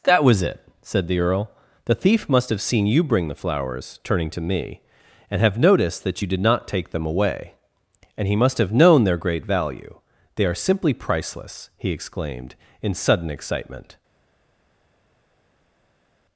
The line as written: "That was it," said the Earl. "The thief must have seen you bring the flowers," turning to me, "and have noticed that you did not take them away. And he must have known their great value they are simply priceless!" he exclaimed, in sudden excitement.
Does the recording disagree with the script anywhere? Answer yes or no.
no